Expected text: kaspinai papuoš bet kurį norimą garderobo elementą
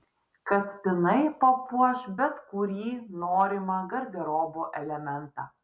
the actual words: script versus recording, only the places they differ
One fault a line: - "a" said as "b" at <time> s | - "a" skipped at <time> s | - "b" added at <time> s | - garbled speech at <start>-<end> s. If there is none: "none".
none